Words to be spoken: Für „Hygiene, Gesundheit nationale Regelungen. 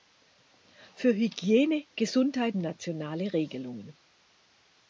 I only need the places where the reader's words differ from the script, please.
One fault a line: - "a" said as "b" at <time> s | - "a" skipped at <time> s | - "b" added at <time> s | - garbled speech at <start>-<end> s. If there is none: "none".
none